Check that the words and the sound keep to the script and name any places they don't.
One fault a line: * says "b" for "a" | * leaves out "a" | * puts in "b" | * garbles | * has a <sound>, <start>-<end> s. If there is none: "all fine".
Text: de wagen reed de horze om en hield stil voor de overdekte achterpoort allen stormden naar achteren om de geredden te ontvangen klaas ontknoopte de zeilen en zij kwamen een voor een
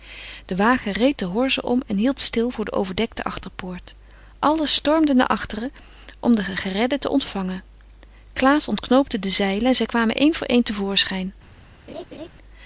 * has a laugh, 11.9-12.3 s